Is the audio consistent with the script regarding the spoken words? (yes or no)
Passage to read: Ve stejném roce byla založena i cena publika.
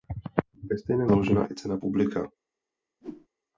no